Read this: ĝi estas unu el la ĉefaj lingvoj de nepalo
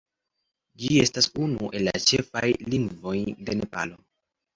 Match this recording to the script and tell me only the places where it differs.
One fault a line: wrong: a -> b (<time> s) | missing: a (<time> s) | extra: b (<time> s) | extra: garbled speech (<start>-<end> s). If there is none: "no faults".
no faults